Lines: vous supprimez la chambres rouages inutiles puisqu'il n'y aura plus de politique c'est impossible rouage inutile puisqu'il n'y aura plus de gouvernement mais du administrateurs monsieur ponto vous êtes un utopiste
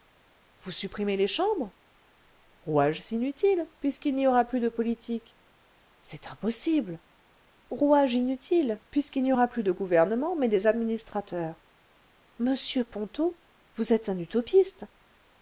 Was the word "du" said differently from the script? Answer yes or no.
yes